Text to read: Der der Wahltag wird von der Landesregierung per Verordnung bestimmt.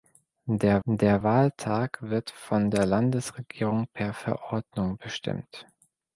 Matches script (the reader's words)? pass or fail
pass